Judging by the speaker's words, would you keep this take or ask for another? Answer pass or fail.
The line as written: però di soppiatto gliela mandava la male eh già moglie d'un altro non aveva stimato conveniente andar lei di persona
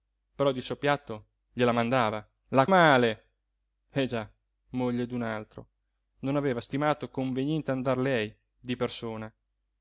pass